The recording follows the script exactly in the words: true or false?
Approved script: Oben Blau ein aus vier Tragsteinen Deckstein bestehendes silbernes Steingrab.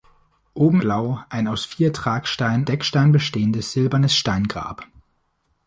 true